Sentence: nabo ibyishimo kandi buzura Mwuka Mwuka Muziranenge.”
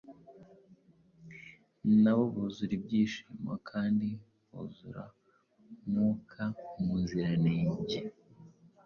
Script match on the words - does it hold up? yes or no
no